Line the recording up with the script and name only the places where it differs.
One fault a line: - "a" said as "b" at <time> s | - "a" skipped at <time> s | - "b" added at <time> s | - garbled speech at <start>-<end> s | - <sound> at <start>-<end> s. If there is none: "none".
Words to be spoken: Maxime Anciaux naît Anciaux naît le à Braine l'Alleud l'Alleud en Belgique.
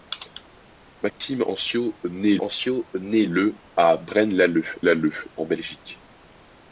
- dropout at 1.1-1.2 s